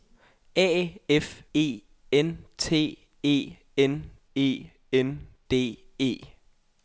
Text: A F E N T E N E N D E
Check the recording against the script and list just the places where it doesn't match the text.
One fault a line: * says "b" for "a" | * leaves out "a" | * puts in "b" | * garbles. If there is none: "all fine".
all fine